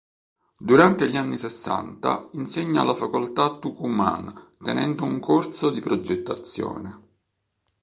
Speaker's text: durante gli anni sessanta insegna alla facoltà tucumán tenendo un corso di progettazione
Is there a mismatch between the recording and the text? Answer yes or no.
no